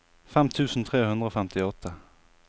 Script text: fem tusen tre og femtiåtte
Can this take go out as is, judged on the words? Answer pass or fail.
fail